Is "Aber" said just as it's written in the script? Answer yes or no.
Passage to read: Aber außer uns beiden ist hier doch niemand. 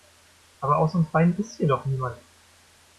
yes